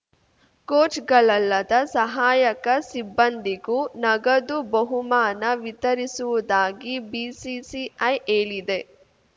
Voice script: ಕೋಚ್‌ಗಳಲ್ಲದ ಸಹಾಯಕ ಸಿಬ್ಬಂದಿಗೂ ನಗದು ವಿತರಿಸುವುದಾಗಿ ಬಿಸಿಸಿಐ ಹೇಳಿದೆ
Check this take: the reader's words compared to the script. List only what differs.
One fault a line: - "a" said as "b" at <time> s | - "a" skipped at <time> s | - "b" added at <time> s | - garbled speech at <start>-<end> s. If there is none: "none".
- "ಬಹುಮಾನ" added at 4.7 s